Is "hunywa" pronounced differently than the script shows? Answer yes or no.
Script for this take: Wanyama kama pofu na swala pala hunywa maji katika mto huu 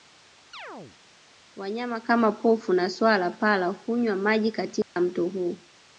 no